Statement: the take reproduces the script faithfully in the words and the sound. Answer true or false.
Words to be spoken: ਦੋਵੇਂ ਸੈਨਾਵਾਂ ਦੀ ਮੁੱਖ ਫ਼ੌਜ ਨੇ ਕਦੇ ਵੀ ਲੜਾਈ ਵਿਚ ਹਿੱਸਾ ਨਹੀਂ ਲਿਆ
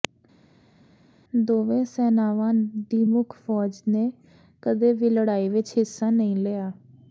true